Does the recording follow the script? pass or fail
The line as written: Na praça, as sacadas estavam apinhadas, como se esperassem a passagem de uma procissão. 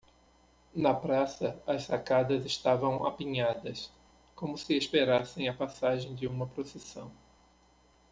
pass